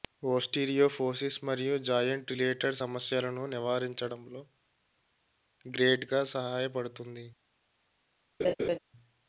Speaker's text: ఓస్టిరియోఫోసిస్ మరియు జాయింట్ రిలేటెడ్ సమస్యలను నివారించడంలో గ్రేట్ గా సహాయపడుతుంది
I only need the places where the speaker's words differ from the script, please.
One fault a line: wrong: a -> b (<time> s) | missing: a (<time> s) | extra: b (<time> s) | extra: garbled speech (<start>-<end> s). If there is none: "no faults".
no faults